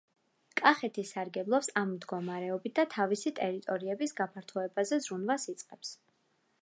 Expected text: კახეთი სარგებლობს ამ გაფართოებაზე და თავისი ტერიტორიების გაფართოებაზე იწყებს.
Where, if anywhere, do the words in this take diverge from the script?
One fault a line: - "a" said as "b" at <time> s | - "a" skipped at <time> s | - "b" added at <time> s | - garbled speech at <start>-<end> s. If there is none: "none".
- "გაფართოებაზე" said as "მდგომარეობით" at 2.0 s
- "ზრუნვას" added at 5.1 s